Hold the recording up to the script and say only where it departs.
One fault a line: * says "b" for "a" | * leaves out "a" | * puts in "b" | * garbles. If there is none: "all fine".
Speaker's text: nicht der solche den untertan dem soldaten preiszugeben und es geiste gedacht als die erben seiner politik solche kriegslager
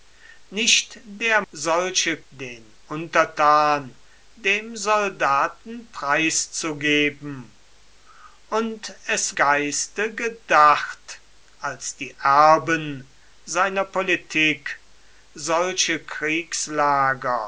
all fine